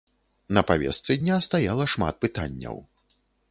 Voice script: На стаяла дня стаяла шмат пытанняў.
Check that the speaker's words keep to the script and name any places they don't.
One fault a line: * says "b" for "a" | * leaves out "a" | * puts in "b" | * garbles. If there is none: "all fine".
* says "павестцы" for "стаяла"